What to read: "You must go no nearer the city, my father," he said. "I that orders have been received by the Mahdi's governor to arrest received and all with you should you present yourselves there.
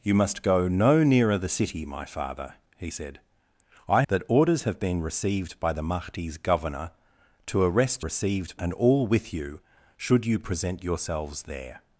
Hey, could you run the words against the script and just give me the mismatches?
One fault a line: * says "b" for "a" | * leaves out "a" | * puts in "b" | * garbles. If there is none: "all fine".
all fine